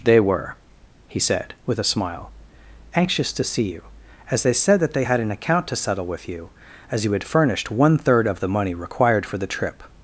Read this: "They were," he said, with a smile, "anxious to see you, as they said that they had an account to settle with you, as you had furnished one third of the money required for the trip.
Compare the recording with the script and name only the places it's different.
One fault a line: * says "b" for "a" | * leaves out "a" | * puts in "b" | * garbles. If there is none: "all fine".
all fine